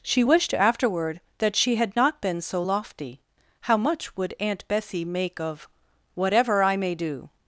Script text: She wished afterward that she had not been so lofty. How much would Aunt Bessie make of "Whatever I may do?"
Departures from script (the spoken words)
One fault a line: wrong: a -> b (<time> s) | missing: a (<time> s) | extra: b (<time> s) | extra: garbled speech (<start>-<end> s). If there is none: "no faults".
no faults